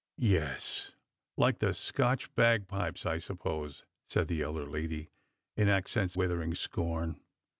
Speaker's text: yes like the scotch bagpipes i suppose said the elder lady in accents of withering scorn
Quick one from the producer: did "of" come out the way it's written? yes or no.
no